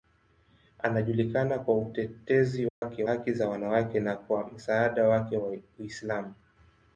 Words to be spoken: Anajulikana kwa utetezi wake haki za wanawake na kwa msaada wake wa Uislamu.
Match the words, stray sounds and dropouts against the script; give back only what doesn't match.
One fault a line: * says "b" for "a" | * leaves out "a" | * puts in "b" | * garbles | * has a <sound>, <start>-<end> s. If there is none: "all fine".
* has a dropout, 2.7-2.8 s